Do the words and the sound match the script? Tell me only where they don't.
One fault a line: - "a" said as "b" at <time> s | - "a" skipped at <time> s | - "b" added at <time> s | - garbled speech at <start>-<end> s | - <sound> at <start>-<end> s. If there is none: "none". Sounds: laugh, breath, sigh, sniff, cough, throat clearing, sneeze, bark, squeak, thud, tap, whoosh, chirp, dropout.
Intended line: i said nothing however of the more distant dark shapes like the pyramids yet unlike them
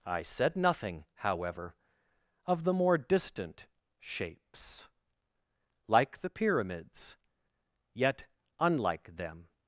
- "dark" skipped at 3.7 s